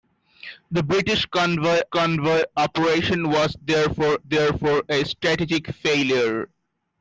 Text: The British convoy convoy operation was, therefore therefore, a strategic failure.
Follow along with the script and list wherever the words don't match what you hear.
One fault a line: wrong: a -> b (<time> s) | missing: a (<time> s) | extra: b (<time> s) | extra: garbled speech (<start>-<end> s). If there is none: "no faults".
no faults